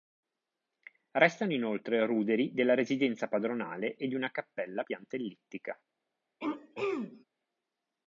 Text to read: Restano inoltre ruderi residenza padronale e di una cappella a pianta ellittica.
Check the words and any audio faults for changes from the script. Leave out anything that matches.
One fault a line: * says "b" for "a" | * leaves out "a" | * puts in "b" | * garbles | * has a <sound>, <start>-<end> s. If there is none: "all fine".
* puts in "della"
* has a throat clearing, 6.4-7.2 s